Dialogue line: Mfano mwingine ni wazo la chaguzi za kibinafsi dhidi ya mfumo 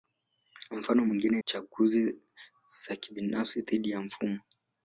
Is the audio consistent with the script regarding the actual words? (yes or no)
no